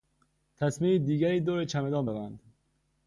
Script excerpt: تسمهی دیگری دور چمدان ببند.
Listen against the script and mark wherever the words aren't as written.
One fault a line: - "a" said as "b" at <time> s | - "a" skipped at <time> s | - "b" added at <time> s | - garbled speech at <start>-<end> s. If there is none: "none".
none